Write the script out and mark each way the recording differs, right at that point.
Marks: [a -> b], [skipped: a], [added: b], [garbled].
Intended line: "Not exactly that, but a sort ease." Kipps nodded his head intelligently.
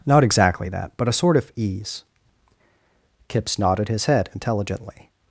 "Not exactly that, but a sort [added: of] ease." Kipps nodded his head intelligently.